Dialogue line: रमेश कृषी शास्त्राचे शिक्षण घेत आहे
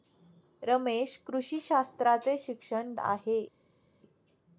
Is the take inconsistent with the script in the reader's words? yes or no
yes